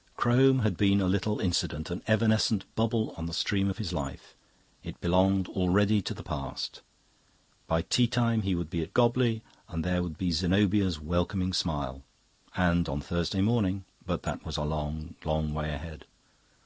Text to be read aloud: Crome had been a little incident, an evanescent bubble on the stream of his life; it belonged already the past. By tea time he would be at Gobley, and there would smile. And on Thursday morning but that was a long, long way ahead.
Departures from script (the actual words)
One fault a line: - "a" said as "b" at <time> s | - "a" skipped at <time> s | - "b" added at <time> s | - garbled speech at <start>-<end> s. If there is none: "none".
- "to" added at 6.0 s
- "be Zenobia's welcoming" added at 10.2 s